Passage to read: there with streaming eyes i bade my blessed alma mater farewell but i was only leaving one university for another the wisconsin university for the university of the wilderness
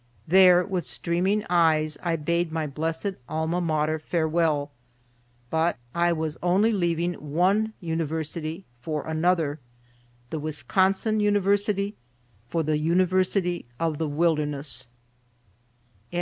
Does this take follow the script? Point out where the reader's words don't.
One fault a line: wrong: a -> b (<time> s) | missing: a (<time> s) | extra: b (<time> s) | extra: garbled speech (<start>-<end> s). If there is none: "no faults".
no faults